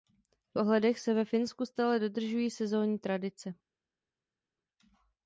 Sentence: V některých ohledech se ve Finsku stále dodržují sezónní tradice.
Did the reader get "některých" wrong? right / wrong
wrong